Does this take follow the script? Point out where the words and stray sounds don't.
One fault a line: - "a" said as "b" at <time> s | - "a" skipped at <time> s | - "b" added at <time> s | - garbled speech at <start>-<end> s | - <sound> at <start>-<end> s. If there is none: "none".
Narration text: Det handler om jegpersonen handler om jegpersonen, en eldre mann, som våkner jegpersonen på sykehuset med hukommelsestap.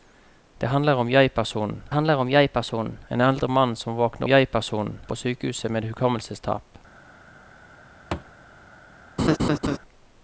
- thud at 8.1-8.3 s
- laugh at 9.2-9.8 s